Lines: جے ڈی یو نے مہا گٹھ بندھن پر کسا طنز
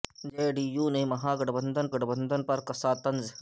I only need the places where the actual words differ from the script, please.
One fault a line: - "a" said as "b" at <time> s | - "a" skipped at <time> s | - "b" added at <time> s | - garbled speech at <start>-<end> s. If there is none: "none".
- "گٹھ بندھن" added at 1.9 s